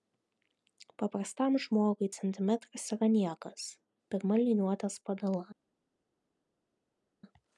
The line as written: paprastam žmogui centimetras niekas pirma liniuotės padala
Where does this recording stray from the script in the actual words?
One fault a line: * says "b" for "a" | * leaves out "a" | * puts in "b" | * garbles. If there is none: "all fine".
* puts in "yra"